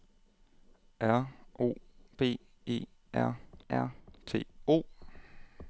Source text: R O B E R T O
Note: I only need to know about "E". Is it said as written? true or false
true